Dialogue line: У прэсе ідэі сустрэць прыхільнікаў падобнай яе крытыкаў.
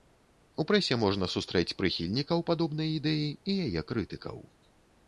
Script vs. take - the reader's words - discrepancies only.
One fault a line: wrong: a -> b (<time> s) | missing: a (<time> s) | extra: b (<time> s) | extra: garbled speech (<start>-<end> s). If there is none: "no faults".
wrong: ідэі -> можна (1.0 s)
extra: ідэі і (3.0 s)